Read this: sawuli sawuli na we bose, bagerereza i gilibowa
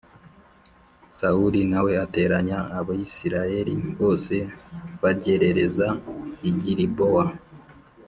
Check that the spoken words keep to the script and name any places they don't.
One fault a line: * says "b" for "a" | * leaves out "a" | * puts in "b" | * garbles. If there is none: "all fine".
* leaves out "sawuli"
* puts in "ateranya abisirayeli"